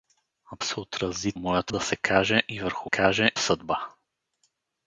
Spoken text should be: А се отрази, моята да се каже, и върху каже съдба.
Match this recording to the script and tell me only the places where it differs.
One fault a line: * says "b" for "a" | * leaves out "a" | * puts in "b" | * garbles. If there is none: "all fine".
all fine